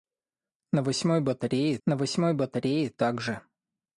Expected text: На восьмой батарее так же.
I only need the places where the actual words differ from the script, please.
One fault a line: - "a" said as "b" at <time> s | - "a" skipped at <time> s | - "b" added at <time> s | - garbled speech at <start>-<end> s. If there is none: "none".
- "на восьмой батарее" added at 1.9 s